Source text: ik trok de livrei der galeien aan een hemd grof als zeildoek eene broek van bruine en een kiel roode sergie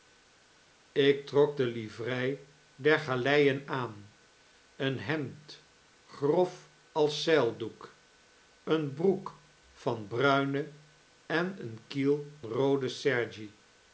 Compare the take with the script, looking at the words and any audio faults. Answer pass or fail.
pass